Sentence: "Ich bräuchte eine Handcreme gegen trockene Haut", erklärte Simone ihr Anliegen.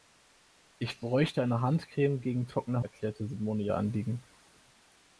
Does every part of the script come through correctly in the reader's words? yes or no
no